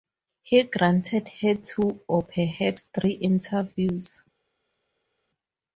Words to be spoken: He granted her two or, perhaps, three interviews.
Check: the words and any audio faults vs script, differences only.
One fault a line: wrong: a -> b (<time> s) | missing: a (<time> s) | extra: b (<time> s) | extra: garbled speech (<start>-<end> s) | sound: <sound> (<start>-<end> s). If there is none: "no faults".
no faults